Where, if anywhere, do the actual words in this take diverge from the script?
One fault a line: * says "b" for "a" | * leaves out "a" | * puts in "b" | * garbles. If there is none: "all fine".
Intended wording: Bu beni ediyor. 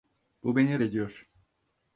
all fine